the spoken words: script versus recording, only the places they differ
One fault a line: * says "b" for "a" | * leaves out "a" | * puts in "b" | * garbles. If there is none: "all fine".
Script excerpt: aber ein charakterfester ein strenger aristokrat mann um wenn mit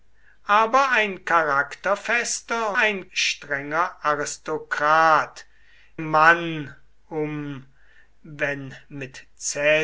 all fine